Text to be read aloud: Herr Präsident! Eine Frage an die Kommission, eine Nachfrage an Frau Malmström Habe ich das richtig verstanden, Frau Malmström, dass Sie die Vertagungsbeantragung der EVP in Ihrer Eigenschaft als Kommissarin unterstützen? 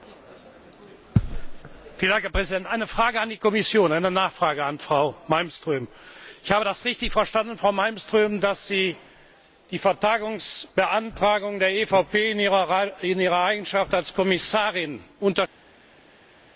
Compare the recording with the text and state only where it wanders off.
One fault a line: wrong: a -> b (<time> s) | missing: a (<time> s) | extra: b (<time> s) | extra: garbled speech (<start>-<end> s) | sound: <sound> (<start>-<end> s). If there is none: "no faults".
no faults